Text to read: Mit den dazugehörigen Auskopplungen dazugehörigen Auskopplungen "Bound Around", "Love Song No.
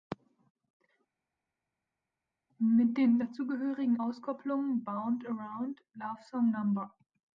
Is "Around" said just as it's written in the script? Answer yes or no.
yes